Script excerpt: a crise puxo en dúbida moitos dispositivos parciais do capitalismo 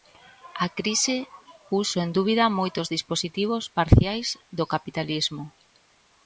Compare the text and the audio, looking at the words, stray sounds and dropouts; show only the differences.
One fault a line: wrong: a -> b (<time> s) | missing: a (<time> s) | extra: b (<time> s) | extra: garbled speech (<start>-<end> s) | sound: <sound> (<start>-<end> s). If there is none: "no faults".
no faults